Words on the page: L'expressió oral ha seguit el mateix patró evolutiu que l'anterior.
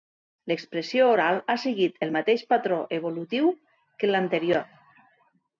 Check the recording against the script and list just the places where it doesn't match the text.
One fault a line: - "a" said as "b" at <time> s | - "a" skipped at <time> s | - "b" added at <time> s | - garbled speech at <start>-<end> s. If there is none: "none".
none